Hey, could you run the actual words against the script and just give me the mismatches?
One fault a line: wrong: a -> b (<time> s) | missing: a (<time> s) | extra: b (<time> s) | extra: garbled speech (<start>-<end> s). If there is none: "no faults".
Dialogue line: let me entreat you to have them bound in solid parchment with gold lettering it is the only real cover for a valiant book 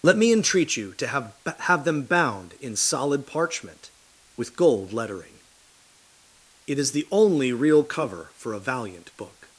extra: have (1.6 s)